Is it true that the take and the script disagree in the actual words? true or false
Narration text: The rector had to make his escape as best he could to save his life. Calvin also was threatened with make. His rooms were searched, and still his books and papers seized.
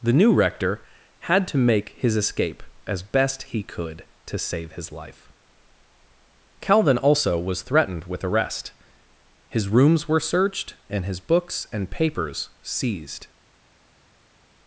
true